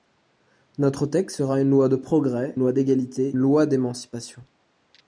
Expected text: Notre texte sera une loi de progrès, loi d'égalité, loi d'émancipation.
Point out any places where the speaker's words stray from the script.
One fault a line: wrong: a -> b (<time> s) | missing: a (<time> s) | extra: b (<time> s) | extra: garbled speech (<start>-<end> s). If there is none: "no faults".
no faults